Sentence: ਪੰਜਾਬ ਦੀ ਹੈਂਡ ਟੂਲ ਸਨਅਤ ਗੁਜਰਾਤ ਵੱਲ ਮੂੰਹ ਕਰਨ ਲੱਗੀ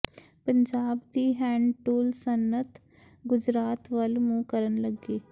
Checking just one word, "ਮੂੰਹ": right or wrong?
right